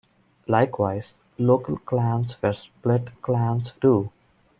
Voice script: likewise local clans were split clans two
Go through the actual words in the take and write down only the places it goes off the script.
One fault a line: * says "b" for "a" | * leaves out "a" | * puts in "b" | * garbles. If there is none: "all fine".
all fine